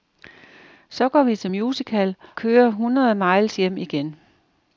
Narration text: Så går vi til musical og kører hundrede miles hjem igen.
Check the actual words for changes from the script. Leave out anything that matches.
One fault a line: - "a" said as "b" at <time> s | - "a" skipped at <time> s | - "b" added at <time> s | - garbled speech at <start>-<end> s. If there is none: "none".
- "og" skipped at 2.1 s